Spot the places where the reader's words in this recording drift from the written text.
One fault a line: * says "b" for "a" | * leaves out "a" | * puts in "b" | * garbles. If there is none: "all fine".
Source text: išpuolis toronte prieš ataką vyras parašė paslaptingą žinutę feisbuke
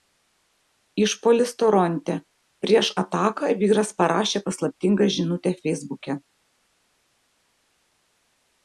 all fine